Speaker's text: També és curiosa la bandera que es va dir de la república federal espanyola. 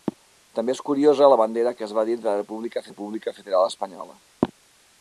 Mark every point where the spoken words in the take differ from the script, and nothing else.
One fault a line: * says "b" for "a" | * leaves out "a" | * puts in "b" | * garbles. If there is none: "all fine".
* puts in "república"